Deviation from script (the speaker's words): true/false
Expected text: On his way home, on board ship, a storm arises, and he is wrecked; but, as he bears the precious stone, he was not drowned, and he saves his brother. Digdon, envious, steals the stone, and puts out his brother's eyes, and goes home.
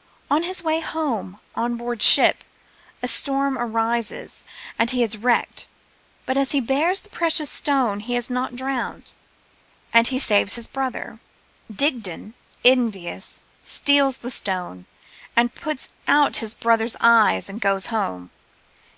true